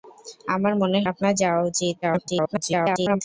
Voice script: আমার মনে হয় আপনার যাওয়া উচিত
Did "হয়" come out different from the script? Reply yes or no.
yes